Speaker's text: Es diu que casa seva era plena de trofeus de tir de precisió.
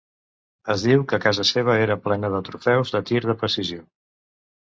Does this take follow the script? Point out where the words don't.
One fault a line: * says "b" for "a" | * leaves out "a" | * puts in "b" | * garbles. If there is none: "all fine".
all fine